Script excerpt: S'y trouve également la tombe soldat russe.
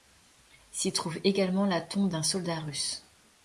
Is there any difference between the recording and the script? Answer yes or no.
yes